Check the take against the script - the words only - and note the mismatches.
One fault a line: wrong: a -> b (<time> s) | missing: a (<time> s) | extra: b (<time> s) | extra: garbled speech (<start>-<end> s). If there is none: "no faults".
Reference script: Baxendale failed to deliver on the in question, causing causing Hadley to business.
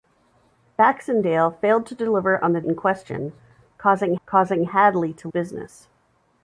no faults